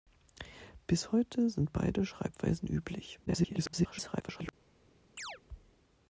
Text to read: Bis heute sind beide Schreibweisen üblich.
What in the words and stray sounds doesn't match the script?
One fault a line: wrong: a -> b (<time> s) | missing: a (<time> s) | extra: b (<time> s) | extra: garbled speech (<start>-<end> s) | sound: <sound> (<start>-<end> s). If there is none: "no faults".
extra: garbled speech (3.3-4.5 s)
sound: chirp (5.2-5.4 s)